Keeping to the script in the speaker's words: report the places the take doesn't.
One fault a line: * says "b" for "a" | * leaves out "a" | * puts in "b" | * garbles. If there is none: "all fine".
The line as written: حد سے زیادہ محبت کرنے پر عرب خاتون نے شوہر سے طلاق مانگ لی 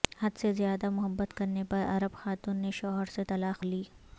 * leaves out "مانگ"